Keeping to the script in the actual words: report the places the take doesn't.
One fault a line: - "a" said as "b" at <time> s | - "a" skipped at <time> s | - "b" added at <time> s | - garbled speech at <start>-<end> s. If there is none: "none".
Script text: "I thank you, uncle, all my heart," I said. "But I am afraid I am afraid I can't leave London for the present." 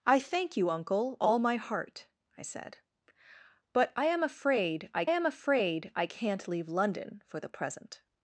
none